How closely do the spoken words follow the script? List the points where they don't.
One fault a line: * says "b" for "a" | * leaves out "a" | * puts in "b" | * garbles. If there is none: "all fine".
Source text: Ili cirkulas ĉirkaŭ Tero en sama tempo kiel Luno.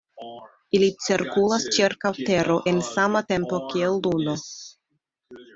all fine